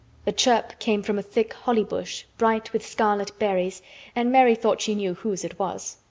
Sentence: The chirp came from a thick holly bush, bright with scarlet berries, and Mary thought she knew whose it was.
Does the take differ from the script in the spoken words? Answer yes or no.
no